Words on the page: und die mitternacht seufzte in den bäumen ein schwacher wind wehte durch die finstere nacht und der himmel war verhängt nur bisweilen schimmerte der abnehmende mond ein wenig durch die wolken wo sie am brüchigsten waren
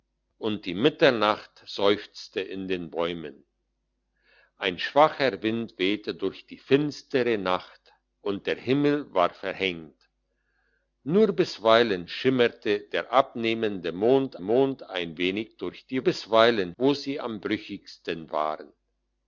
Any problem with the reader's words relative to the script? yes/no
yes